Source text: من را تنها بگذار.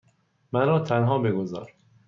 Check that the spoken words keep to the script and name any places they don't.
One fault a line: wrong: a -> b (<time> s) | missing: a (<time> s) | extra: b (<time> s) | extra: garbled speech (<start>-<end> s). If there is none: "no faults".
no faults